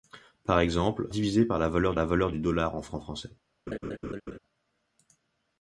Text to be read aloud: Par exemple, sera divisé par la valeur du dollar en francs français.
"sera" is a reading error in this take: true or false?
true